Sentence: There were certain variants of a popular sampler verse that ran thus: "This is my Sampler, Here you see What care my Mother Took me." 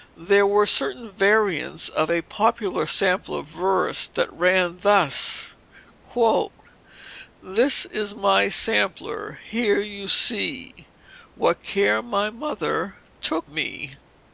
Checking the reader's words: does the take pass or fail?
pass